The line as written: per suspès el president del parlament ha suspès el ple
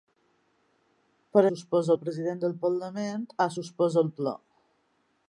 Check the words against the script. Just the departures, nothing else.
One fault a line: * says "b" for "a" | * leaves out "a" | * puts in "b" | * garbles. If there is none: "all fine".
all fine